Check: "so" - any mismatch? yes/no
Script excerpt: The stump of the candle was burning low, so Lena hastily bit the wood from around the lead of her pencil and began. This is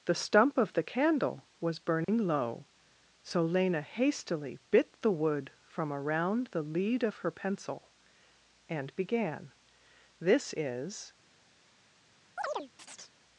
no